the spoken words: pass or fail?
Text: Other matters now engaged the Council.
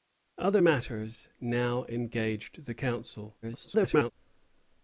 fail